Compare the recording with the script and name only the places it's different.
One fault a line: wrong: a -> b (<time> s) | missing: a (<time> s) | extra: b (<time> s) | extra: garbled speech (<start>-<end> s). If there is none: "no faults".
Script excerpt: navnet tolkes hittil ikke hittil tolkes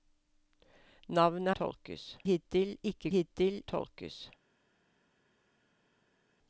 no faults